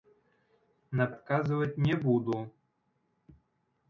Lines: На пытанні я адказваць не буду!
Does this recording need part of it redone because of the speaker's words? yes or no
yes